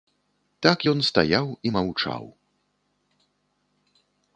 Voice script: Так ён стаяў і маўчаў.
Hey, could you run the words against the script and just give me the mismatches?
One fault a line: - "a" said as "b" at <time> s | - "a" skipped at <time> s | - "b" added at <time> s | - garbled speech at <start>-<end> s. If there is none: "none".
none